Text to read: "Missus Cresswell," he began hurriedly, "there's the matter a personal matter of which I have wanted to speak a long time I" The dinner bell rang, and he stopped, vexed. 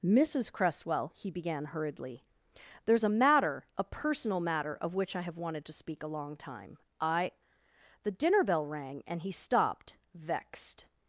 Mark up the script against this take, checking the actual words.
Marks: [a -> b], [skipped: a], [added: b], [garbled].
"Missus Cresswell," he began hurriedly, "there's [the -> a] matter a personal matter of which I have wanted to speak a long time I" The dinner bell rang, and he stopped, vexed.